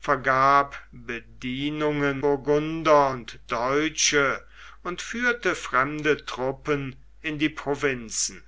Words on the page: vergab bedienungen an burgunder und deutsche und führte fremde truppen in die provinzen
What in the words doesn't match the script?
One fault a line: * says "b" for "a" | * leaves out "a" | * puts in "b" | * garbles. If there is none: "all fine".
* leaves out "an"